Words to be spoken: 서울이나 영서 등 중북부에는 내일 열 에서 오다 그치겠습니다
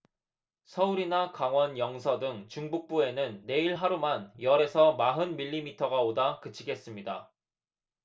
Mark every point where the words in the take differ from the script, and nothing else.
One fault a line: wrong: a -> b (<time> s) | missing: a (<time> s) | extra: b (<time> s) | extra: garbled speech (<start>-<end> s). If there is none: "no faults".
extra: 강원 (1.3 s)
extra: 하루만 (3.7 s)
extra: 마흔 밀리미터가 (4.9 s)